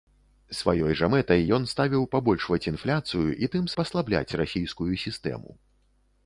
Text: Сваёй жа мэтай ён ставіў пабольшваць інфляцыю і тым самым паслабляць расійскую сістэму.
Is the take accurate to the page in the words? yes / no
no